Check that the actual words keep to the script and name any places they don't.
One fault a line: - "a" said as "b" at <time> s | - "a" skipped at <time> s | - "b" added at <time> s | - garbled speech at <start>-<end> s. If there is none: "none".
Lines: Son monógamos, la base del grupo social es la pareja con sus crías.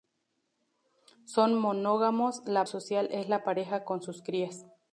- "base del grupo" skipped at 2.6 s